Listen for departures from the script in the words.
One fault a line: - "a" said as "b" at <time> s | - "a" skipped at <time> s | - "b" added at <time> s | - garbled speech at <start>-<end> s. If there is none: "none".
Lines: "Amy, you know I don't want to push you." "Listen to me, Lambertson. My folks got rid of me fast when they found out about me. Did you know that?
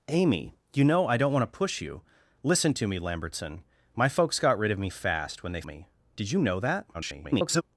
- "found out about" skipped at 5.6 s
- garbled speech at 6.9-7.6 s